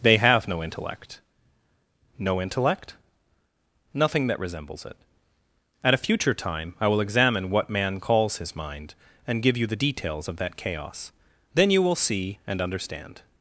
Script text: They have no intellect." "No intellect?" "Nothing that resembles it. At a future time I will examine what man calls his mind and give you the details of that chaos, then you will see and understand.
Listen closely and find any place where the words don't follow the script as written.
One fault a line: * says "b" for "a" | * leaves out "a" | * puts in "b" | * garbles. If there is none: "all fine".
all fine